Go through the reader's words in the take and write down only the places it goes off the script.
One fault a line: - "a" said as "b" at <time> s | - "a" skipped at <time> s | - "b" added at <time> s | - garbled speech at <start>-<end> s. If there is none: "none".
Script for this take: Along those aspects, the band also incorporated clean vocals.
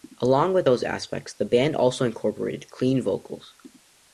- "with" added at 0.5 s